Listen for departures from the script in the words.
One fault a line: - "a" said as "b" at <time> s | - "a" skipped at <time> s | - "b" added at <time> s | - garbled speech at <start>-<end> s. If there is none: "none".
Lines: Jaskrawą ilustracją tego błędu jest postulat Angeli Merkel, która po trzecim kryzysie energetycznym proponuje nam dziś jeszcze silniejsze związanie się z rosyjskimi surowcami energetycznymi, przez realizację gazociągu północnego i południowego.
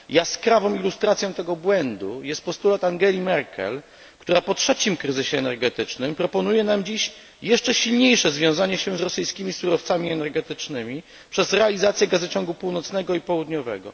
none